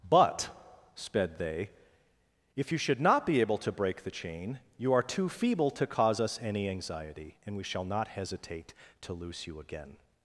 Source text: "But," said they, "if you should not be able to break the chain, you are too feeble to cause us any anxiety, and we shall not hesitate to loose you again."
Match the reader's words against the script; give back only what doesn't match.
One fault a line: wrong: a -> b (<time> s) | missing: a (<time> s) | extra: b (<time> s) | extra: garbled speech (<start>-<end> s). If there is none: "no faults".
wrong: said -> sped (0.9 s)